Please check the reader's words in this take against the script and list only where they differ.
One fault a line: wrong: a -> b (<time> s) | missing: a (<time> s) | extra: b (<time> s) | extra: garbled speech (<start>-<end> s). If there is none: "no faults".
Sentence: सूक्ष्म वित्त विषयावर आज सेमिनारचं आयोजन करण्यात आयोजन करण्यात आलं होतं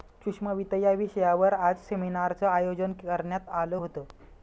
extra: या (0.8 s)
missing: आयोजन करण्यात (3.5 s)